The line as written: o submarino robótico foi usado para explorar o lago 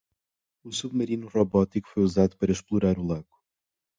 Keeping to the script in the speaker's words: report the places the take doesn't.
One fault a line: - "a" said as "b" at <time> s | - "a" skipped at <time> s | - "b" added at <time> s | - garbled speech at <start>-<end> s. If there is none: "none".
none